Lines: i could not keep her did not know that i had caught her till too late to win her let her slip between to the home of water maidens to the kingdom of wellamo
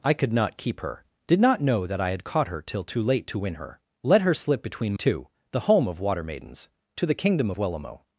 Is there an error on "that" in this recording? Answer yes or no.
no